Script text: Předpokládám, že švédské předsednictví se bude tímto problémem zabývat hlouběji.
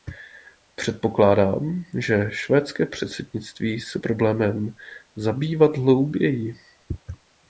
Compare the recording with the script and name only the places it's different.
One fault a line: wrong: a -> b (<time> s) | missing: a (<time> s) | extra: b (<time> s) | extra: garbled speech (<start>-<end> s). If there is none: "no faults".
missing: bude tímto (4.0 s)